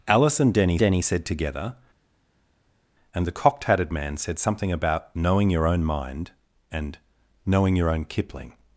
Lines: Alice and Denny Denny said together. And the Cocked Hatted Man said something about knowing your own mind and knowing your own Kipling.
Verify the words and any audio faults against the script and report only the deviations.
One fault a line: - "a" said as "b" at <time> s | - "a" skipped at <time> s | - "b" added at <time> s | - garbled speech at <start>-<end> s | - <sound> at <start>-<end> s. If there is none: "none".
none